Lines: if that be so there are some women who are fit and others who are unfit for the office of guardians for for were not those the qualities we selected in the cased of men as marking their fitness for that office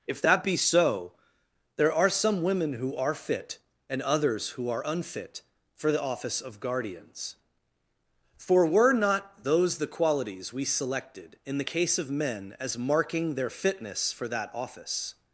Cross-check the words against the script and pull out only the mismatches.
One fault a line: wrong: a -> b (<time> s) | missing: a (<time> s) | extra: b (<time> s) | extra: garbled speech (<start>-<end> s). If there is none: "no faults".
missing: for (8.7 s)
wrong: cased -> case (11.6 s)